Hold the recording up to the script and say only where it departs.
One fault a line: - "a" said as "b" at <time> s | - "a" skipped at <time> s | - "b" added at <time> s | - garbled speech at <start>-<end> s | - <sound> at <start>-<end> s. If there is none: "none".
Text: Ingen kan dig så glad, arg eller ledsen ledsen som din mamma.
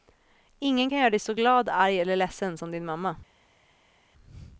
- "göra" added at 1.0 s
- "ledsen" skipped at 2.6 s